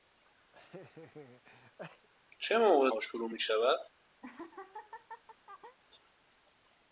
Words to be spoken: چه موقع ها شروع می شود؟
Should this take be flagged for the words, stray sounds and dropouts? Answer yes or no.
yes